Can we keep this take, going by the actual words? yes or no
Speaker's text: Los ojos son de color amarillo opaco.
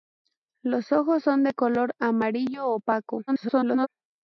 no